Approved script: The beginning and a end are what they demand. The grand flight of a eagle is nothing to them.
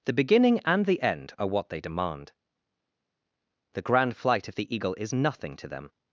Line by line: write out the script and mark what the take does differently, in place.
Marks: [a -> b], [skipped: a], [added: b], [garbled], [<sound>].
The beginning and [a -> the] end are what they demand. The grand flight of [a -> the] eagle is nothing to them.